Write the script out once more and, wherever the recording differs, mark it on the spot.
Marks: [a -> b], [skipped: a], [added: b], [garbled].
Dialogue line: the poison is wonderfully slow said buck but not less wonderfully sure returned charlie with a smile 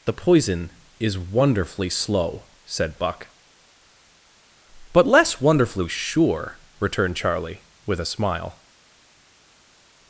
the poison is wonderfully slow said buck but [skipped: not] less wonderfully sure returned charlie with a smile